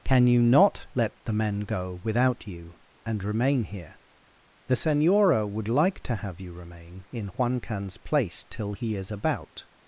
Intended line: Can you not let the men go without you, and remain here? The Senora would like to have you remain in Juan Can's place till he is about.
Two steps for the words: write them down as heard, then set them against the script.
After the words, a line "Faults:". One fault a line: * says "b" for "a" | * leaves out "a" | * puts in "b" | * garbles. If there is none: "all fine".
Can you not let the men go without you, and remain here? The Senora would like to have you remain in Juan Can's place till he is about.
Faults:
all fine